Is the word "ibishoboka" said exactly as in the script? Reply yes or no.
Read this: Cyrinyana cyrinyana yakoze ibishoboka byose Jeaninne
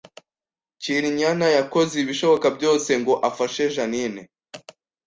yes